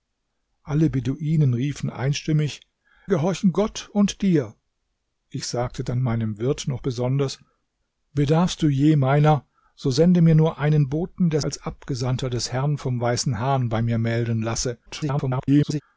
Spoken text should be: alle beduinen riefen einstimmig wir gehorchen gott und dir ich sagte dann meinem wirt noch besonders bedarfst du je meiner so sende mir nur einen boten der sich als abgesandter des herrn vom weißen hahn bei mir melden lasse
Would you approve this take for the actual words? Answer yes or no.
no